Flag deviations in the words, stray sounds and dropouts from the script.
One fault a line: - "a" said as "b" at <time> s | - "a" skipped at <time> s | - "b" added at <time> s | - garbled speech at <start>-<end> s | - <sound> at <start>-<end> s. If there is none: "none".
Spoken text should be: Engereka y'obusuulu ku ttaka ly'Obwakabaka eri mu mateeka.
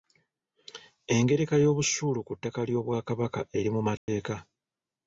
- dropout at 4.0-4.1 s